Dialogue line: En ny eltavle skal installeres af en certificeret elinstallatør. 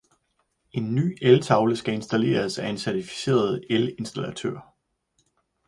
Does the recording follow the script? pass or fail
pass